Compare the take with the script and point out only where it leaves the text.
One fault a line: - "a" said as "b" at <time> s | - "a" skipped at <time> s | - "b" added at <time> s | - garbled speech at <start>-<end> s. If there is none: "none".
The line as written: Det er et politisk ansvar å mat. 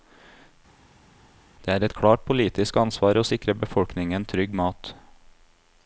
- "klart" added at 2.0 s
- "sikre befolkningen trygg" added at 3.3 s